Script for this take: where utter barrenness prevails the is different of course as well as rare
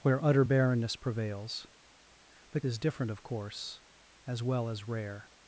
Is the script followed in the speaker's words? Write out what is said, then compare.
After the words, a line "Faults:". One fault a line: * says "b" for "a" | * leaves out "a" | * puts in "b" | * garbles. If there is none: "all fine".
where utter barrenness prevails the is different of course as well as rare
Faults:
all fine